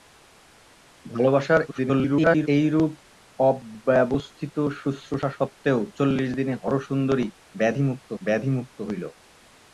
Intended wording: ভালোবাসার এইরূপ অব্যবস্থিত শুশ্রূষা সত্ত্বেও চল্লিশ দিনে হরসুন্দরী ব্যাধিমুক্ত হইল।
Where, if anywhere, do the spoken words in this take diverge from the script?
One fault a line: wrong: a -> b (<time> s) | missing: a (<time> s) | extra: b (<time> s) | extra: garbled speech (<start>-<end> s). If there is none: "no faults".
extra: garbled speech (1.7-2.5 s)
extra: ব্যাধিমুক্ত (8.3 s)